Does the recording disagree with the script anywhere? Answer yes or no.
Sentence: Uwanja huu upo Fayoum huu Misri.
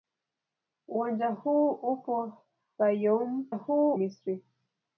no